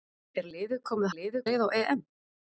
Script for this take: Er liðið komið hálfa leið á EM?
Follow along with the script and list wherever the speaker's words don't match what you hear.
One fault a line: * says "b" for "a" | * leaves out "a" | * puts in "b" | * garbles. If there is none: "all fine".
* says "liðið" for "hálfa"